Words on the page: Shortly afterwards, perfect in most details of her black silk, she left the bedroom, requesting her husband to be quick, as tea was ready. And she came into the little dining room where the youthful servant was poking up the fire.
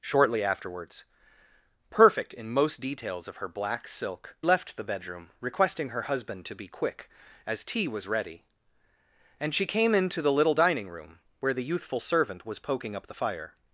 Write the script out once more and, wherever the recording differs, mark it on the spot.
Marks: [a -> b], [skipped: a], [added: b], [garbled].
Shortly afterwards, perfect in most details of her black silk, [skipped: she] left the bedroom, requesting her husband to be quick, as tea was ready. And she came into the little dining room where the youthful servant was poking up the fire.